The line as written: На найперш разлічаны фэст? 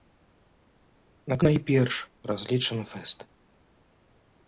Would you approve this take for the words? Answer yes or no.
yes